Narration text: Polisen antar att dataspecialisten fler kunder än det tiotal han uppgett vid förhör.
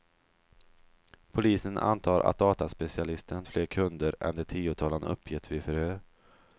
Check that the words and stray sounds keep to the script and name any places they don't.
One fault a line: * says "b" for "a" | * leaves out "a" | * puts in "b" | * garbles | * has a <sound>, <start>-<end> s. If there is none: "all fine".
all fine